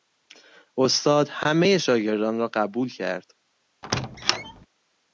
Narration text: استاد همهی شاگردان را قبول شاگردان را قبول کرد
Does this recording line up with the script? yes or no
no